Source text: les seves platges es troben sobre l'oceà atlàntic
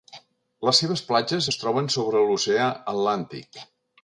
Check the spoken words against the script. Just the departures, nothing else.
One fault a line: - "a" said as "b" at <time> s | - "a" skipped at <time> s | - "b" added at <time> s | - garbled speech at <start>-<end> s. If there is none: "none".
none